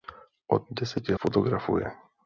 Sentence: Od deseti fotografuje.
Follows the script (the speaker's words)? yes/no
yes